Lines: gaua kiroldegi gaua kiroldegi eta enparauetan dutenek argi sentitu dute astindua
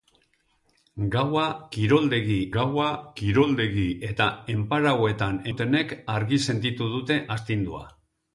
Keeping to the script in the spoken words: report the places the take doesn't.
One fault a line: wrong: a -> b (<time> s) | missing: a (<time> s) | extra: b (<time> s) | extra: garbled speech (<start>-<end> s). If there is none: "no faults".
no faults